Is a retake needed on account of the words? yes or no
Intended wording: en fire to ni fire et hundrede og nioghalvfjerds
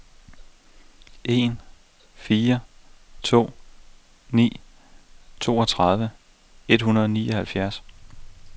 yes